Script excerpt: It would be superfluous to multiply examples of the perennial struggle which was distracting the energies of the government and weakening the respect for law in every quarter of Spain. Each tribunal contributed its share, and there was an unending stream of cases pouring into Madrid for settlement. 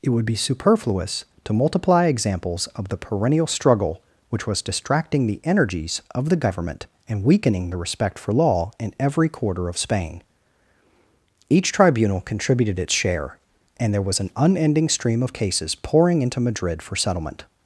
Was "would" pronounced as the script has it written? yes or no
yes